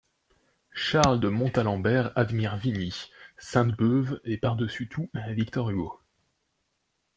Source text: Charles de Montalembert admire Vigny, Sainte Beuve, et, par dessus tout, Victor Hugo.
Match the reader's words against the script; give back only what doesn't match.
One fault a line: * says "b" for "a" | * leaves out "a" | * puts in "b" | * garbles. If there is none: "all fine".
all fine